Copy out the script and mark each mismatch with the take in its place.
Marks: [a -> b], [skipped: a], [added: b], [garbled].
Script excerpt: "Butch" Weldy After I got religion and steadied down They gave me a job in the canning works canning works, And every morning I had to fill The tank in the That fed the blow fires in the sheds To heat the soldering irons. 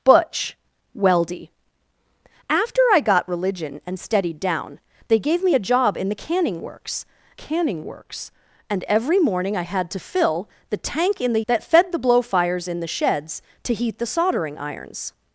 "Butch" Weldy After I got religion and steadied down They gave me a job in the canning works canning works, And every morning I had to fill The tank in the That fed the blow fires in the sheds To heat the soldering irons.